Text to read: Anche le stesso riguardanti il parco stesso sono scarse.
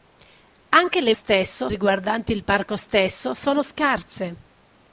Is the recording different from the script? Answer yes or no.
no